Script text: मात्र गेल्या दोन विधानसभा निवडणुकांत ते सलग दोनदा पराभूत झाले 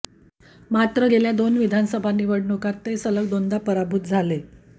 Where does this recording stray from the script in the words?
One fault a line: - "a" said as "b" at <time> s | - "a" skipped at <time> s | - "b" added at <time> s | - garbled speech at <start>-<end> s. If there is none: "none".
none